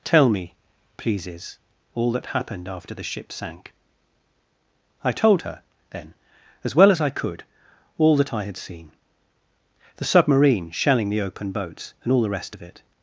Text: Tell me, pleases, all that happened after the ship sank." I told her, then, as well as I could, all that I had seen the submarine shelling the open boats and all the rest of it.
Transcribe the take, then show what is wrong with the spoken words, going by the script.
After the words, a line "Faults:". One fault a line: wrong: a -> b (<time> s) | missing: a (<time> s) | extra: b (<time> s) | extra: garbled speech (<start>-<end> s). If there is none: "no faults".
Tell me, pleases, all that happened after the ship sank." I told her, then, as well as I could, all that I had seen the submarine shelling the open boats and all the rest of it.
Faults:
no faults